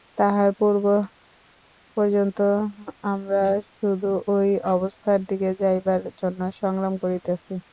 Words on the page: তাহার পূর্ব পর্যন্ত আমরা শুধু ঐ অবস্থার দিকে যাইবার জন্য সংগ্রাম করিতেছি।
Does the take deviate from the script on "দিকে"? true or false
false